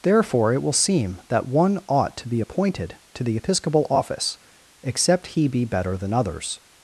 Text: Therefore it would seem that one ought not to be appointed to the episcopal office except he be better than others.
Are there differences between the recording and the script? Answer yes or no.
yes